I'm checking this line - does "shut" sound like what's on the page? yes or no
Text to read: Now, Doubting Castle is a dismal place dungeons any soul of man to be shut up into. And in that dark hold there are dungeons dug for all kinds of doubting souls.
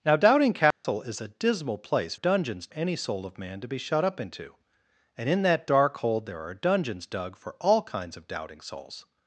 yes